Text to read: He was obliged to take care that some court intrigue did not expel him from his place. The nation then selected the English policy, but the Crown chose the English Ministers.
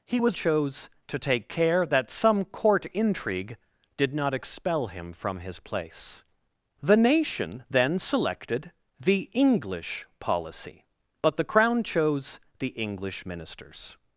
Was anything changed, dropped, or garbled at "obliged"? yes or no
yes